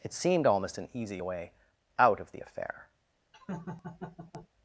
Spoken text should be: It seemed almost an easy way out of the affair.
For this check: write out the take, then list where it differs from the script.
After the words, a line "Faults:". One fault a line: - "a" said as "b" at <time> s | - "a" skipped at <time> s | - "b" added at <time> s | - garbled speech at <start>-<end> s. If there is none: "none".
It seemed almost an easy way out of the affair.
Faults:
none